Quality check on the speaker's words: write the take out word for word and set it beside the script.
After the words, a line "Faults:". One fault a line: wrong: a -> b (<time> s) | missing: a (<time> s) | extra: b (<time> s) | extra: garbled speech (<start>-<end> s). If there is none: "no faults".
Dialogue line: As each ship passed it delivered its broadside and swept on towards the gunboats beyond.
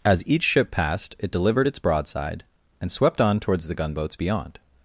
As each ship passed it delivered its broadside and swept on towards the gunboats beyond.
Faults:
no faults